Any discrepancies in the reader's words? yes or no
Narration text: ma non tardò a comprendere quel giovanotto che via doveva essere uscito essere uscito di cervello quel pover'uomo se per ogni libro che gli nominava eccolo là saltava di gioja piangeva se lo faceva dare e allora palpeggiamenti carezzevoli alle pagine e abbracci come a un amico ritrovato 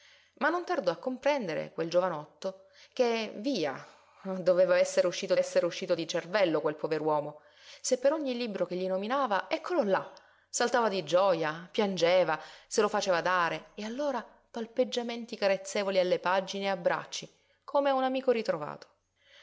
no